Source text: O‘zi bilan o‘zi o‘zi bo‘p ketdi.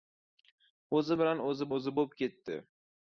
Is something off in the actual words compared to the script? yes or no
no